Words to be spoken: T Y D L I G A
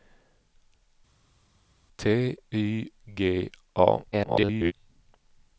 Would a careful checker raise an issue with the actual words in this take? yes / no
yes